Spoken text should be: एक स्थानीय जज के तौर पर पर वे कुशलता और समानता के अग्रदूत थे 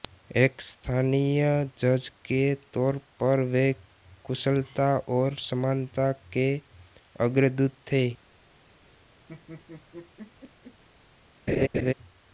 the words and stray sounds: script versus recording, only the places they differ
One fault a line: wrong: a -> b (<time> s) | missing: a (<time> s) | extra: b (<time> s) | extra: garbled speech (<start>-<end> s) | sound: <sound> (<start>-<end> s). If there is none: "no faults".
missing: पर (3.4 s)
sound: laugh (9.3-10.8 s)
sound: laugh (11.5-11.9 s)